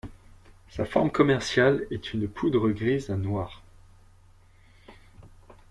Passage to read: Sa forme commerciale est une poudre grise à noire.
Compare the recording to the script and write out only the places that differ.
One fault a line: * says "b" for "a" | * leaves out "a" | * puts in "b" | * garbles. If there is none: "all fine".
all fine